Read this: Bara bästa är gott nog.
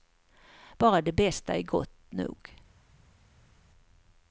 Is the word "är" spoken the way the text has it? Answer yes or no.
yes